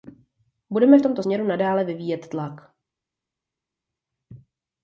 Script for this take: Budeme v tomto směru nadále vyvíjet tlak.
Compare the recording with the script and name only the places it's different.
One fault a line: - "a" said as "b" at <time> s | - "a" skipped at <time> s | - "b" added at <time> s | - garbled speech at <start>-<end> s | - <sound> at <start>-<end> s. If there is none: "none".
none